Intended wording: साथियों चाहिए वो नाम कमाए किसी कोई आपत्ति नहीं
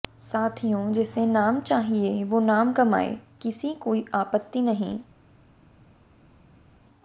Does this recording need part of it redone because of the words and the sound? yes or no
yes